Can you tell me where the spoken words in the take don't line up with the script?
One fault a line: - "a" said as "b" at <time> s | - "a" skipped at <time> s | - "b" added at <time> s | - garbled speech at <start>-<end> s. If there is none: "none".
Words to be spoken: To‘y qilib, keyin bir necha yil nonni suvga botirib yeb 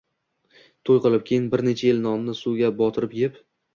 none